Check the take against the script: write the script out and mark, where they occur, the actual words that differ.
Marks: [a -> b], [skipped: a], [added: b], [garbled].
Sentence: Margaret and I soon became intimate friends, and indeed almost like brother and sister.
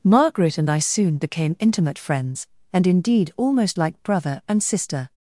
Margaret and I soon became intimate friends, and indeed almost like brother and sister.